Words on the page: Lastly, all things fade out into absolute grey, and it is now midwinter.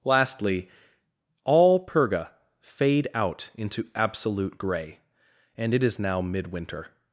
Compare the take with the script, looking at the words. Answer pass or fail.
fail